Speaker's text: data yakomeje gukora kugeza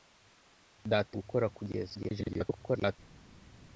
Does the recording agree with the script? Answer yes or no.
no